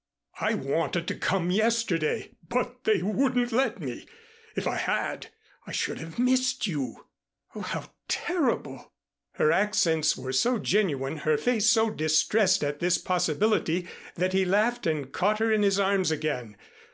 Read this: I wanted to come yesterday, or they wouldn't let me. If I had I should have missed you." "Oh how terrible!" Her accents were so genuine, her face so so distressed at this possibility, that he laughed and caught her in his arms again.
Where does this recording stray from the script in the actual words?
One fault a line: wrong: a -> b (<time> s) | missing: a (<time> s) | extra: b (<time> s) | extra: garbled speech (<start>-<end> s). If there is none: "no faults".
wrong: or -> but (2.5 s)
missing: so (11.9 s)